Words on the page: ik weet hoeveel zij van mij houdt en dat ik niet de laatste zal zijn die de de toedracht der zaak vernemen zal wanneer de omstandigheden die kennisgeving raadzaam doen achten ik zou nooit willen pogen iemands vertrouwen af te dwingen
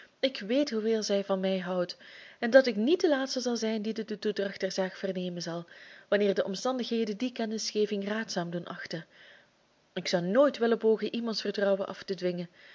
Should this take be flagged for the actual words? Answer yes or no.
no